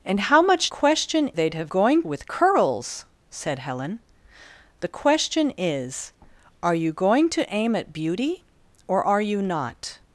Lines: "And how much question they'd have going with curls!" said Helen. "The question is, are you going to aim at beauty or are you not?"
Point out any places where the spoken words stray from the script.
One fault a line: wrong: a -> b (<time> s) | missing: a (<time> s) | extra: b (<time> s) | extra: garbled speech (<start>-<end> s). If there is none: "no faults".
no faults